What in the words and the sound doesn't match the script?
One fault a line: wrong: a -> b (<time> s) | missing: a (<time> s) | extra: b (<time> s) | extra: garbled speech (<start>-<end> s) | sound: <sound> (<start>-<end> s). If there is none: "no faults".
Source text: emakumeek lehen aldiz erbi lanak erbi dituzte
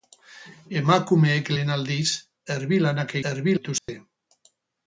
sound: dropout (3.8-3.9 s)